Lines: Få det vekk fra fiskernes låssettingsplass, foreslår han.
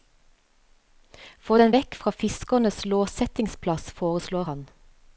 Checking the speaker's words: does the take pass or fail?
fail